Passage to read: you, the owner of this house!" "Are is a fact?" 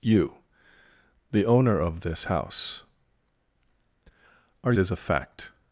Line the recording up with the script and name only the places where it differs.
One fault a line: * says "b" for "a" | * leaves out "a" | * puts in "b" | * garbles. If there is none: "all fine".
all fine